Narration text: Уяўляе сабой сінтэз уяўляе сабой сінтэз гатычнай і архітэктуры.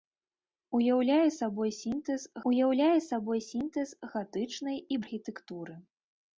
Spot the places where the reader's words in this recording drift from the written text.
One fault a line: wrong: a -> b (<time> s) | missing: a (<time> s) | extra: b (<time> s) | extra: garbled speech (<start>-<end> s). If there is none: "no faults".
no faults